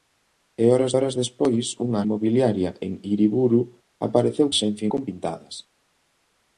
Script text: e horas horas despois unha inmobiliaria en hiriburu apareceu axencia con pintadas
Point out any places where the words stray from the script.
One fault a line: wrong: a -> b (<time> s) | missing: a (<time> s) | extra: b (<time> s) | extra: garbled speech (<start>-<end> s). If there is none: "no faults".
no faults